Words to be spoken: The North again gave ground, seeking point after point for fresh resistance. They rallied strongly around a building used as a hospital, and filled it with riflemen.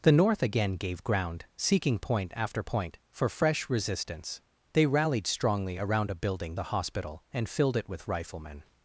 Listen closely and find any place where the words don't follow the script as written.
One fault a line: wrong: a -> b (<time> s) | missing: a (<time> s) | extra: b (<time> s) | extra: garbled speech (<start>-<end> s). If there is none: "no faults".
missing: used as (6.6 s)